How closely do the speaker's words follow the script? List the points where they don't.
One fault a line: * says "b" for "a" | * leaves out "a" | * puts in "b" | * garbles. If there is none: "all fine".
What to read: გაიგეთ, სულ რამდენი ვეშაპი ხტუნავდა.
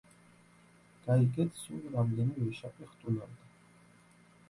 all fine